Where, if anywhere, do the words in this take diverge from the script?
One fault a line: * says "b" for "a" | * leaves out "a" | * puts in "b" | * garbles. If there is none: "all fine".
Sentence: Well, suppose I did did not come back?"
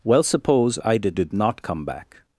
all fine